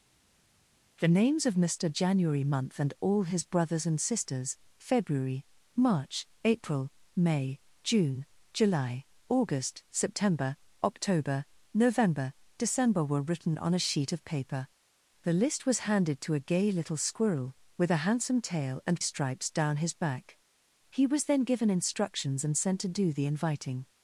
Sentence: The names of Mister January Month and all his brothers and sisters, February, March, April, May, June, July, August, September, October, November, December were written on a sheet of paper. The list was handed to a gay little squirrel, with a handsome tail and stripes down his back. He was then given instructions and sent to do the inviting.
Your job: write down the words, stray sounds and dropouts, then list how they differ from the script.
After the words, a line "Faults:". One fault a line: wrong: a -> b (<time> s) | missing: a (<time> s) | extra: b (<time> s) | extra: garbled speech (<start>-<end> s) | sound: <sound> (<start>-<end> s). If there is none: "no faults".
The names of Mister January Month and all his brothers and sisters, February, March, April, May, June, July, August, September, October, November, December were written on a sheet of paper. The list was handed to a gay little squirrel, with a handsome tail and stripes down his back. He was then given instructions and sent to do the inviting.
Faults:
no faults